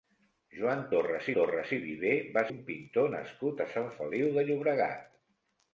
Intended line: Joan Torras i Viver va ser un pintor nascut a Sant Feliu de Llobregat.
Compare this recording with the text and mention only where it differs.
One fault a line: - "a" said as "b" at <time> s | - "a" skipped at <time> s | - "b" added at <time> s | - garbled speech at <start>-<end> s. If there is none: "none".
- "Torras" added at 1.4 s
- "ser" skipped at 2.4 s